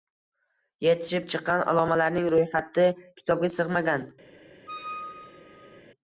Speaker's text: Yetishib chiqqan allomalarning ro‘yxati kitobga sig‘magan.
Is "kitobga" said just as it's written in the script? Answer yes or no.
yes